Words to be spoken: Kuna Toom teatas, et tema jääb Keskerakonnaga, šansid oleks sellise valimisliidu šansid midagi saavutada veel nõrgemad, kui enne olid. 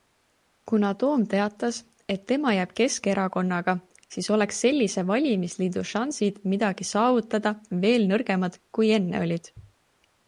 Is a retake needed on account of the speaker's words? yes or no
yes